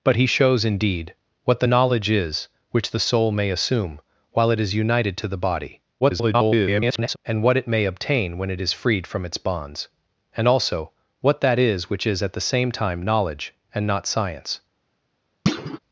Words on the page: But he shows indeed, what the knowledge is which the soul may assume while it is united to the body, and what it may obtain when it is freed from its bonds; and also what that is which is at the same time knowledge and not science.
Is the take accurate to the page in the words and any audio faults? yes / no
no